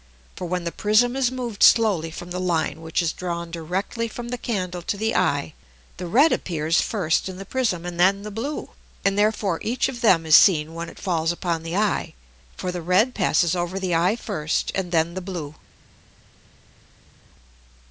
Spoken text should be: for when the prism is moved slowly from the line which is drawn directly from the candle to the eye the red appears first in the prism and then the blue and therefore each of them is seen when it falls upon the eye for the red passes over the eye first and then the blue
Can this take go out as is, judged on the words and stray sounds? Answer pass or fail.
pass